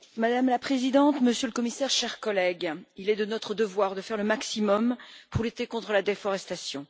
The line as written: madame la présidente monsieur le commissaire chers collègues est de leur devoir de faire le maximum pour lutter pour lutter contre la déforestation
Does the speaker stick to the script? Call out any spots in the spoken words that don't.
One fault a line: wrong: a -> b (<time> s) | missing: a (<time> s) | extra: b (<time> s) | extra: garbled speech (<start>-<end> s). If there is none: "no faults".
extra: il (3.0 s)
wrong: leur -> notre (3.2 s)
missing: pour lutter (5.7 s)